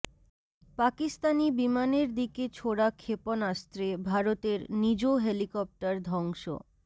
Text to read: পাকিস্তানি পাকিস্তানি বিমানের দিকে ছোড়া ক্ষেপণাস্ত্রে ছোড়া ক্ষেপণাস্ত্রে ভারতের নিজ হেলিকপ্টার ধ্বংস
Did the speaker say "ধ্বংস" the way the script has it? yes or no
yes